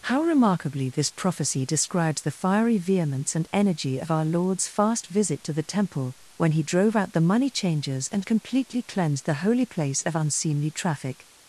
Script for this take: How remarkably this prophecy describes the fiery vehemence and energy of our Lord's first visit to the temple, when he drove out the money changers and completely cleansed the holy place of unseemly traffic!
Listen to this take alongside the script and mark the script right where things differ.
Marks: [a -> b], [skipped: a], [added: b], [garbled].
How remarkably this prophecy describes the fiery vehemence and energy of our Lord's [first -> fast] visit to the temple, when he drove out the money changers and completely cleansed the holy place of unseemly traffic!